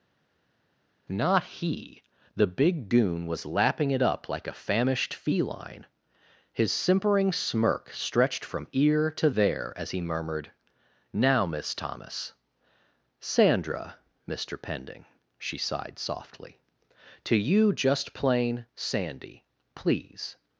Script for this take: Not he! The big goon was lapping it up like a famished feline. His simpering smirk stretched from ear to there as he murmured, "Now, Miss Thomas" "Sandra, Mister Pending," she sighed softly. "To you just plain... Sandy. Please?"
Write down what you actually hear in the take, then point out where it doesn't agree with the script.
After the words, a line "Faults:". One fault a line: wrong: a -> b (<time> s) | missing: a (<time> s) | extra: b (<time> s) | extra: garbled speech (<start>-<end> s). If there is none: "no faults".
Not he! The big goon was lapping it up like a famished feline. His simpering smirk stretched from ear to there as he murmured, "Now, Miss Thomas" "Sandra, Mister Pending," she sighed softly. "To you just plain... Sandy. Please?"
Faults:
no faults